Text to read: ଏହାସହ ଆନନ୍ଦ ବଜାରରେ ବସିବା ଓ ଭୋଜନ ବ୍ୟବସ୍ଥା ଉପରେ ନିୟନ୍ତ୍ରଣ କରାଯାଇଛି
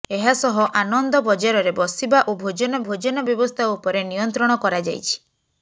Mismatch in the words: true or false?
true